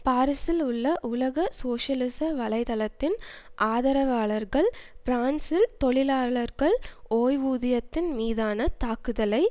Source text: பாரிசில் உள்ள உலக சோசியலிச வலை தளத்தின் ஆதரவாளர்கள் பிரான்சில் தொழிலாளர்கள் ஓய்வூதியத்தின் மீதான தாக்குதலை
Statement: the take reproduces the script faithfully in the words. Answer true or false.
true